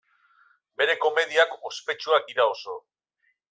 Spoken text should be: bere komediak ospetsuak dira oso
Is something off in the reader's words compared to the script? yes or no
no